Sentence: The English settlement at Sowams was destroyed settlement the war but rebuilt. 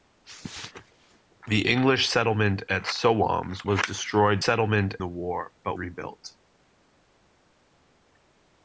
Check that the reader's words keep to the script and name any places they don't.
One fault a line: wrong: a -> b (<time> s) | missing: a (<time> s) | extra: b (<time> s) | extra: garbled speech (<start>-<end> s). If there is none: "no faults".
no faults